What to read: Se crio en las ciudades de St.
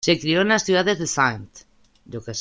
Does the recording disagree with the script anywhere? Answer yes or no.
no